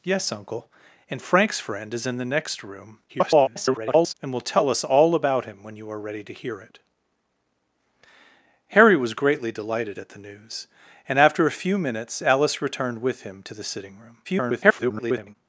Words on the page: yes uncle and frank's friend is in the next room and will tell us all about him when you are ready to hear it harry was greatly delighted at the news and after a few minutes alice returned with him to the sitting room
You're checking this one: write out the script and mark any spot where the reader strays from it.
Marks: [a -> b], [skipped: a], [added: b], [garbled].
yes uncle and frank's friend is in the next room [garbled] and will tell us all about him when you are ready to hear it harry was greatly delighted at the news and after a few minutes alice returned with him to the sitting room [garbled]